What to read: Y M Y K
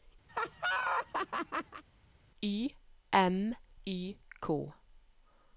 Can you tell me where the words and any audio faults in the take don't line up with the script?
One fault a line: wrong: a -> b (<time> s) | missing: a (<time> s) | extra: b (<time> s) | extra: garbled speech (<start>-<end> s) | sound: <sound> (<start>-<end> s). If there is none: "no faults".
sound: laugh (0.3-1.8 s)